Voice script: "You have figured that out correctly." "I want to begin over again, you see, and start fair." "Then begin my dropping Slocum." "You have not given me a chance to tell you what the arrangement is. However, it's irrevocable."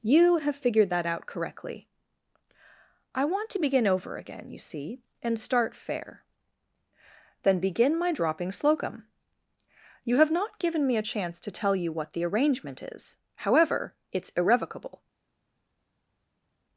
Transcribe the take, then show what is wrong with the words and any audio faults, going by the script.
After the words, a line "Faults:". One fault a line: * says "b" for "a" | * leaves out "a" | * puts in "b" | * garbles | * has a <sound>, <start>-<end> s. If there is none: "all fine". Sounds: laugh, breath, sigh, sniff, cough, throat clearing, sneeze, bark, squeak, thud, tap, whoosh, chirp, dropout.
"You have figured that out correctly." "I want to begin over again, you see, and start fair." "Then begin my dropping Slocum." "You have not given me a chance to tell you what the arrangement is. However, it's irrevocable."
Faults:
all fine